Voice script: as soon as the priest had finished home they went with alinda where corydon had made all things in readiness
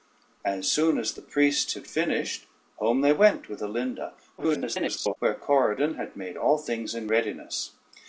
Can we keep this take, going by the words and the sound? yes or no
no